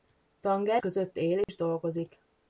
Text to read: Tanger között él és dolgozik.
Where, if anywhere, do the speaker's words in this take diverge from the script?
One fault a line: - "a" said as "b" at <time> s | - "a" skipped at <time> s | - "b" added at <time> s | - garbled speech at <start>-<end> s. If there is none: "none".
none